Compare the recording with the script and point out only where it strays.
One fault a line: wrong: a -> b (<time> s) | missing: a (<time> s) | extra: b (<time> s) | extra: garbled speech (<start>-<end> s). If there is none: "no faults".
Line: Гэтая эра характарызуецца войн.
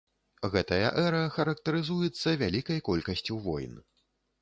extra: вялікай колькасцю (2.4 s)